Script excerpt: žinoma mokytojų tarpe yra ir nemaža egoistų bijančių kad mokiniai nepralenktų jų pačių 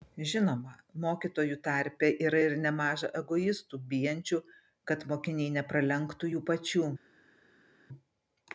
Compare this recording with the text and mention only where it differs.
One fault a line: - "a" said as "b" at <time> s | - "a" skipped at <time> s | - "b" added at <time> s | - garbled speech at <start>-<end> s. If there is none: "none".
none